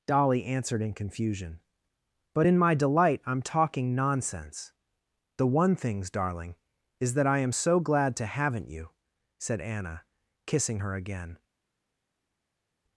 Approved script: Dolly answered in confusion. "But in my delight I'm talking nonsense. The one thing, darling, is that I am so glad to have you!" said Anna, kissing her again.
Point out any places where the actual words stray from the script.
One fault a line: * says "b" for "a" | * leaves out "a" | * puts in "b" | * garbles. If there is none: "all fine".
* says "things" for "thing"
* says "haven't" for "have"